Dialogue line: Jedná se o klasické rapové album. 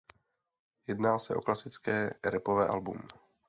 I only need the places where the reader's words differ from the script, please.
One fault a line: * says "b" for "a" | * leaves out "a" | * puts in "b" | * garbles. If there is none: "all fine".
all fine